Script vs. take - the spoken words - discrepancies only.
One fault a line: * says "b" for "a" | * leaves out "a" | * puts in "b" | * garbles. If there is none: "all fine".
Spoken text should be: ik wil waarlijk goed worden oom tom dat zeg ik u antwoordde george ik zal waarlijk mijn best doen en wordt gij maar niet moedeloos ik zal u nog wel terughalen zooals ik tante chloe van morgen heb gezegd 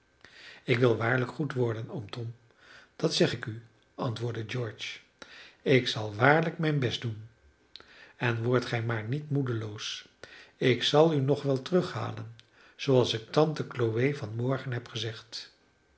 all fine